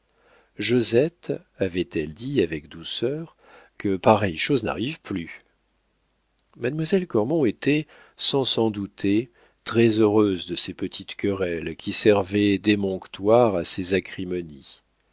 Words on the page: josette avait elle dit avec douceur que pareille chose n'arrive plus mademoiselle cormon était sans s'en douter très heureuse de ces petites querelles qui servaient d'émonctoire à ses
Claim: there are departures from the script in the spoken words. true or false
false